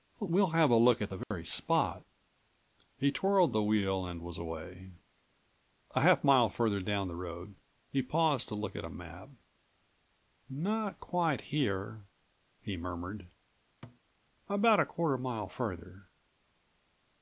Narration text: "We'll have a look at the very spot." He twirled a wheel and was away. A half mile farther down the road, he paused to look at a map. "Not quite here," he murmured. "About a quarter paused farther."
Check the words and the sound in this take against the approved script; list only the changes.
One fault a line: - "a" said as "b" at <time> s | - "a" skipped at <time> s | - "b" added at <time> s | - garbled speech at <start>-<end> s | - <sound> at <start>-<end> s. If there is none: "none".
- dropout at 1.2-1.3 s
- "a" said as "the" at 3.5 s
- thud at 13.8-14.0 s
- "paused" said as "mile" at 15.2 s